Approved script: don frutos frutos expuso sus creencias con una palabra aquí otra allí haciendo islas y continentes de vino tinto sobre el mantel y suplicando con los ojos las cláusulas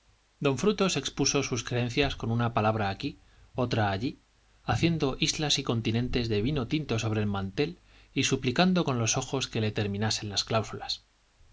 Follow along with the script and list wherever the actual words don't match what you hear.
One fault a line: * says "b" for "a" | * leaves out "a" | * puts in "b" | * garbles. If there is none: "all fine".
* leaves out "frutos"
* puts in "que le terminasen"